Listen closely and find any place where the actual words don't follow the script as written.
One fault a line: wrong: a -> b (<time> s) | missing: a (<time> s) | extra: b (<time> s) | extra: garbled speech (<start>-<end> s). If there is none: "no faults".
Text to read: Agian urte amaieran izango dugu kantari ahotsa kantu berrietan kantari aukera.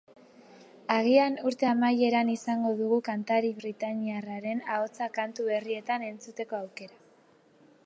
extra: britainiarraren (3.6 s)
wrong: kantari -> entzuteko (6.1 s)